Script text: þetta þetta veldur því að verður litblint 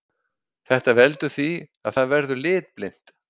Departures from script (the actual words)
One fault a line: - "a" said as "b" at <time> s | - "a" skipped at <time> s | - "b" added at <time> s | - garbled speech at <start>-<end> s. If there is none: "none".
- "þetta" skipped at 0.9 s
- "það" added at 2.0 s